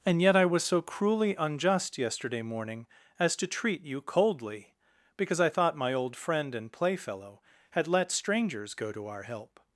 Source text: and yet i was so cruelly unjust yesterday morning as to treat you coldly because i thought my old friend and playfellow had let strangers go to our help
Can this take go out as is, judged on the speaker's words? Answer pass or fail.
pass